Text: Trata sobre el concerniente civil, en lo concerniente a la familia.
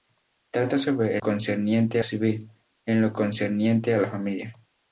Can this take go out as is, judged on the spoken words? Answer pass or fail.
pass